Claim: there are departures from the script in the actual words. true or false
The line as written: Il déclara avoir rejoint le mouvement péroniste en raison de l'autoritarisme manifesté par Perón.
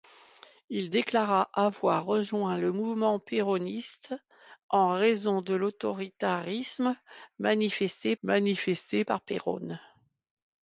true